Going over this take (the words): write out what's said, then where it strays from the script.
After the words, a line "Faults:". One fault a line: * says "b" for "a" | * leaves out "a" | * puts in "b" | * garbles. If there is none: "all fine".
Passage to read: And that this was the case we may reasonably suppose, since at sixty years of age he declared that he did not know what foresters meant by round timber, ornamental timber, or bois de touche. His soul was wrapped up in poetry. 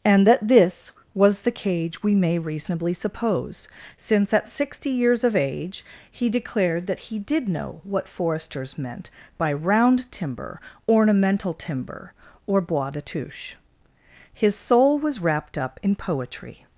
And that this was the cage we may reasonably suppose, since at sixty years of age he declared that he did know what foresters meant by round timber, ornamental timber, or bois de touche. His soul was wrapped up in poetry.
Faults:
* says "cage" for "case"
* leaves out "not"